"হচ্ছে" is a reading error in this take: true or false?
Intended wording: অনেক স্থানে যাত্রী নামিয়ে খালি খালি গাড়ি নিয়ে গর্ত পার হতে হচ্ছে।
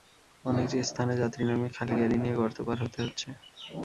false